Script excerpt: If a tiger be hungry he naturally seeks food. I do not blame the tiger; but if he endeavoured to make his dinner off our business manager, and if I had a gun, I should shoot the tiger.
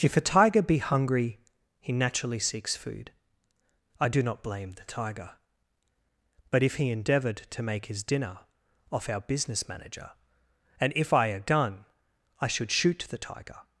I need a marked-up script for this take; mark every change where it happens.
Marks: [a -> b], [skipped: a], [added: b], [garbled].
If a tiger be hungry he naturally seeks food. I do not blame the tiger; but if he endeavoured to make his dinner off our business manager, and if I [skipped: had] a gun, I should shoot the tiger.